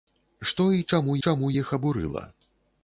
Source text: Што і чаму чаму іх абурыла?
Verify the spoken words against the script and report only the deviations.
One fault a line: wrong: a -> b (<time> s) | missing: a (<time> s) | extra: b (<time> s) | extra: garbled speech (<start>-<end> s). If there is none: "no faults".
no faults